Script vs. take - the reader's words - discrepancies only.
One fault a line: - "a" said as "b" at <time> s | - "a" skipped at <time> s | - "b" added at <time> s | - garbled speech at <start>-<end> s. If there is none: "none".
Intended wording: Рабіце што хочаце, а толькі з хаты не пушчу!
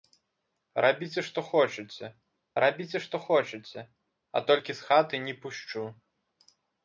- "рабіце што хочаце" added at 2.6 s